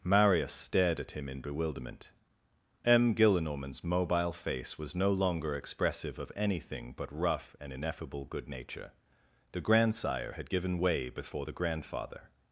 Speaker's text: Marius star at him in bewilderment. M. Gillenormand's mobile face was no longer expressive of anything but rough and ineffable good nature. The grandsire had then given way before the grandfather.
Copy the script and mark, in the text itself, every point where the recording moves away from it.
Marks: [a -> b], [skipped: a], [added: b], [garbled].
Marius [star -> stared] at him in bewilderment. M. Gillenormand's mobile face was no longer expressive of anything but rough and ineffable good nature. The grandsire had [skipped: then] given way before the grandfather.